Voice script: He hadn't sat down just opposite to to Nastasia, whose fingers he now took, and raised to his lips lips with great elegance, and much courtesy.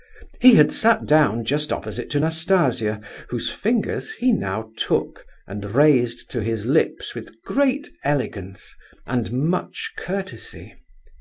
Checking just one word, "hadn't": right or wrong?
wrong